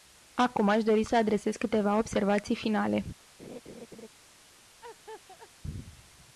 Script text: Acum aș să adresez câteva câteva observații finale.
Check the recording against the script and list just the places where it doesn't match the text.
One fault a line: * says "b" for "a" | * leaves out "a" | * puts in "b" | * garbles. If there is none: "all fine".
* puts in "dori"
* leaves out "câteva"